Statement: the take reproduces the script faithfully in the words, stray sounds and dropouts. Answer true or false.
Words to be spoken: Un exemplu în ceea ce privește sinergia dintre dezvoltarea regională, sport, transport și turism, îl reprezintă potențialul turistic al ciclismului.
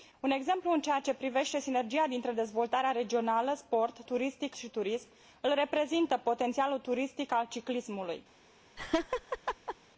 false